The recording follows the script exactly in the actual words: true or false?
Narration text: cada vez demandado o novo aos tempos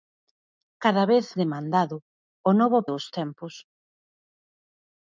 true